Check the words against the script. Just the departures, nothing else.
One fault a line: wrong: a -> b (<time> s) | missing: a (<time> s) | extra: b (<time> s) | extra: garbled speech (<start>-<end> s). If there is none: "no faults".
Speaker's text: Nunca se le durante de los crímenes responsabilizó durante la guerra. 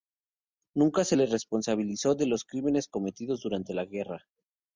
wrong: durante -> responsabilizó (1.3 s)
wrong: responsabilizó -> cometidos (2.9 s)